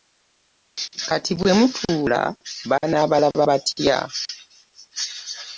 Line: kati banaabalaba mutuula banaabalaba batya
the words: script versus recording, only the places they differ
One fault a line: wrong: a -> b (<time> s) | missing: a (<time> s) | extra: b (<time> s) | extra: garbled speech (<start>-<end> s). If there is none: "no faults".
wrong: banaabalaba -> bwe (1.4 s)